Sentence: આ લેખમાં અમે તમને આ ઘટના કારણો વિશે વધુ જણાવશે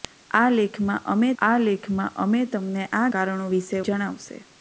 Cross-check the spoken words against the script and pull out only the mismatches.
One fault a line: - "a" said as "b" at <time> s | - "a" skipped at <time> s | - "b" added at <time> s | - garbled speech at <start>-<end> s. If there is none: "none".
- "આ લેખમાં અમે" added at 1.4 s
- "ઘટના" skipped at 3.0 s
- "વધુ" skipped at 3.8 s